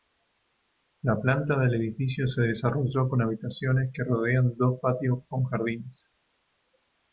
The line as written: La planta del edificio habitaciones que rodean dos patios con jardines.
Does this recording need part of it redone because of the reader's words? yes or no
yes